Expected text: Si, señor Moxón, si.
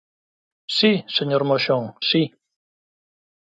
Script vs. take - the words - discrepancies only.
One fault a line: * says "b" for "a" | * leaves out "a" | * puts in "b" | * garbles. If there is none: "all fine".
all fine